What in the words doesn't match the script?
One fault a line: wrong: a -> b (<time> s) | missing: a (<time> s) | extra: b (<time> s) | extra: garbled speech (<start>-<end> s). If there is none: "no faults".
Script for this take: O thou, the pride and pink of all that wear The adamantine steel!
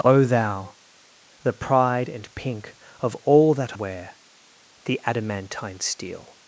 no faults